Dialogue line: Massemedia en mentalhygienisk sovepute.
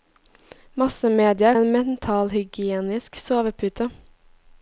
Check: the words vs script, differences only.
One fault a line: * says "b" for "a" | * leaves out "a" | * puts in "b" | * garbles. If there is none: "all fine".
all fine